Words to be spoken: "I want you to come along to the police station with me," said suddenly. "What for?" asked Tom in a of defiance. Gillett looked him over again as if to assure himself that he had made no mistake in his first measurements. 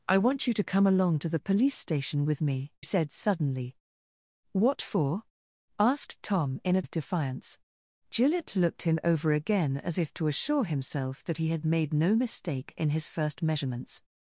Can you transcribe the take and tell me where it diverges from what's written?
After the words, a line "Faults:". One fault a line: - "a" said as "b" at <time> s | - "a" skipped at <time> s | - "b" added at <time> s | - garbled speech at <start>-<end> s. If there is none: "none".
"I want you to come along to the police station with me," said suddenly. "What for?" asked Tom in a of defiance. Gillett looked him over again as if to assure himself that he had made no mistake in his first measurements.
Faults:
none